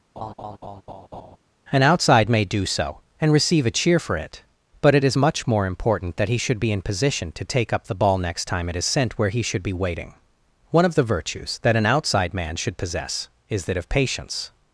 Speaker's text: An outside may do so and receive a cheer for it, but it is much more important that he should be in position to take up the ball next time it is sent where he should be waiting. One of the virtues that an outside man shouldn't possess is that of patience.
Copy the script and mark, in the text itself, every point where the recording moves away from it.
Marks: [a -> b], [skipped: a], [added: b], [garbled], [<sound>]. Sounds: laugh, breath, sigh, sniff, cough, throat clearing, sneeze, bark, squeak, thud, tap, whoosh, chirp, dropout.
[laugh] An outside may do so and receive a cheer for it, but it is much more important that he should be in position to take up the ball next time it is sent where he should be waiting. One of the virtues that an outside man [shouldn't -> should] possess is that of patience.